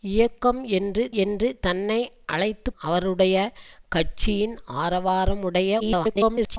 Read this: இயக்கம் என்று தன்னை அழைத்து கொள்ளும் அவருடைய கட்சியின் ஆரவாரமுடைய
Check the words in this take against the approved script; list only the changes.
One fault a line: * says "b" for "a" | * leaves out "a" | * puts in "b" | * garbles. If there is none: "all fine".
* puts in "என்று"
* leaves out "கொள்ளும்"
* garbles